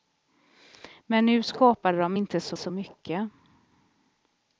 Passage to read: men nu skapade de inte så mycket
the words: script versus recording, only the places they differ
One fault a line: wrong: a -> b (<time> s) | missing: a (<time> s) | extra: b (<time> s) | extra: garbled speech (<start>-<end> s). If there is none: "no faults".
extra: så (2.5 s)